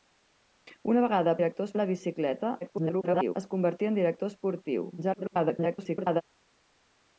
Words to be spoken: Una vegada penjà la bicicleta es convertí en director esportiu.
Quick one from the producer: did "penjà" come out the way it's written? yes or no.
no